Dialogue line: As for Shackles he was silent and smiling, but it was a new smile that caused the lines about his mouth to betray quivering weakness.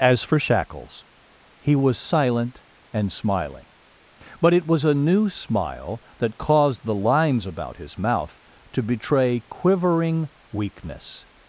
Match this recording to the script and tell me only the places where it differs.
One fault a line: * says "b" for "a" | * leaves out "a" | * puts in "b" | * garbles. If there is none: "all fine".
all fine